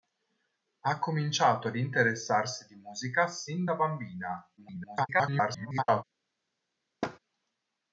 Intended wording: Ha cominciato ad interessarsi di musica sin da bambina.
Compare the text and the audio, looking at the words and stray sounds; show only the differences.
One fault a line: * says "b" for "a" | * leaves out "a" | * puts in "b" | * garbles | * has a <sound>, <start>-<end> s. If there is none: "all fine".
* garbles
* has a thud, 7.0-7.2 s